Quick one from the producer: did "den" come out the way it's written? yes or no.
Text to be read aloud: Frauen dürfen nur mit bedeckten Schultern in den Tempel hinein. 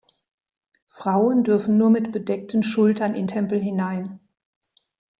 no